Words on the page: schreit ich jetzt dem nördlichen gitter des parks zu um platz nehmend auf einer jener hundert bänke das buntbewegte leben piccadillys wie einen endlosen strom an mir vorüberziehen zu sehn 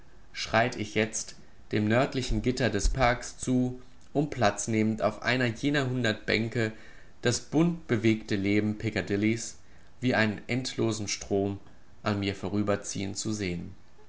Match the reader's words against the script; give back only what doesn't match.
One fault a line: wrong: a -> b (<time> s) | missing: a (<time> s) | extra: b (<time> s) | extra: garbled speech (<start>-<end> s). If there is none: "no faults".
no faults